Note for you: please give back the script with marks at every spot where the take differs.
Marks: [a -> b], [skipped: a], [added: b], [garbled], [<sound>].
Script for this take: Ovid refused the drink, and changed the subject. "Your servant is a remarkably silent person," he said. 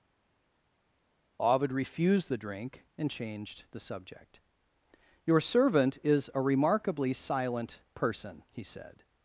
Ovid refused the drink, and changed the subject. "Your servant is a remarkably silent person," he said.